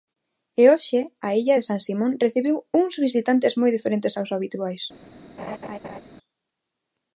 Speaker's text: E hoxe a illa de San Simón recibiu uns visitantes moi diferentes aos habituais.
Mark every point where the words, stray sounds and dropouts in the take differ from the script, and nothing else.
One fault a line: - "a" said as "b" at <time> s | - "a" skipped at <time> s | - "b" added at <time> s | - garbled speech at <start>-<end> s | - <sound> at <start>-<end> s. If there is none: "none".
- laugh at 5.4-6.0 s